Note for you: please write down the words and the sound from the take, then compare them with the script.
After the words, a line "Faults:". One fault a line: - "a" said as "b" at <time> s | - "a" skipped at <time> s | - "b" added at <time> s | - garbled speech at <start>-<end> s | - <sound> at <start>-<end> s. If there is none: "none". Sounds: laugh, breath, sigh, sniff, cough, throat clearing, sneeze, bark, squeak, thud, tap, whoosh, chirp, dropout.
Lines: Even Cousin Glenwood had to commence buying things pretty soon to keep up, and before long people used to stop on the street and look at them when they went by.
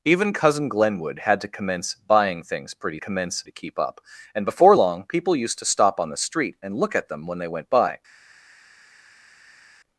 Even Cousin Glenwood had to commence buying things pretty commence to keep up, and before long people used to stop on the street and look at them when they went by.
Faults:
- "soon" said as "commence" at 3.0 s